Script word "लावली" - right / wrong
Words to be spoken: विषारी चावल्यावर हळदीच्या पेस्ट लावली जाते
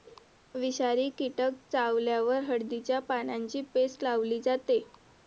right